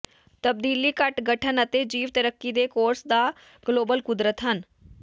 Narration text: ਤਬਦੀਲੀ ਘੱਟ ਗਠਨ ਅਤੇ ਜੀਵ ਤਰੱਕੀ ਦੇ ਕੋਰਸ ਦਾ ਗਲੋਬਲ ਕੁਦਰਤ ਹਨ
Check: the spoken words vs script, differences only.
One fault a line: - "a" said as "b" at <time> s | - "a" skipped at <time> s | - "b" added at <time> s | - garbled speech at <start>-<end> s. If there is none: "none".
none